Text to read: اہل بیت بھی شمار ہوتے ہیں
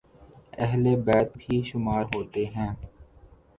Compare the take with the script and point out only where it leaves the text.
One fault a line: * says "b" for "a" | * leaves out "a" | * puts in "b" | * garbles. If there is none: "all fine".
all fine